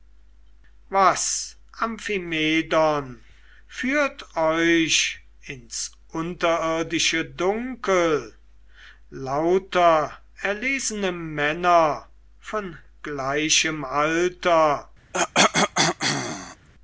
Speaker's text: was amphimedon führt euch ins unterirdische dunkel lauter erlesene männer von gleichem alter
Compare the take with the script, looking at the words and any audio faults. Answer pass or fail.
fail